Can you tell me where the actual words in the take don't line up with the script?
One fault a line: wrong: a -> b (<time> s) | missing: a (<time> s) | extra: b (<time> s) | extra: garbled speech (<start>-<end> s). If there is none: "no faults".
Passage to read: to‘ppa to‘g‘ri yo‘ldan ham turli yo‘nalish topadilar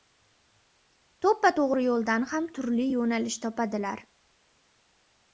no faults